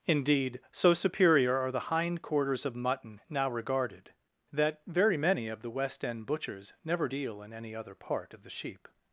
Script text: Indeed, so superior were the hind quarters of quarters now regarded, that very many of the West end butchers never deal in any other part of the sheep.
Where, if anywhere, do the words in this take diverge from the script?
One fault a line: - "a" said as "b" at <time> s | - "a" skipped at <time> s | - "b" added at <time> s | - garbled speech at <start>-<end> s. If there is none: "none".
- "were" said as "are" at 1.6 s
- "quarters" said as "mutton" at 2.8 s